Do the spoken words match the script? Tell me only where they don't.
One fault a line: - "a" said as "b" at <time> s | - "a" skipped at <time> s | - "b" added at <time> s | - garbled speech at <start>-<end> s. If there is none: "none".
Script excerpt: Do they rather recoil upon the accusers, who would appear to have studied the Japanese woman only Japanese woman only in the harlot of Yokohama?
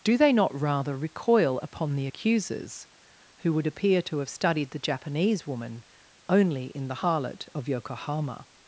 - "not" added at 0.3 s
- "Japanese woman only" skipped at 6.7 s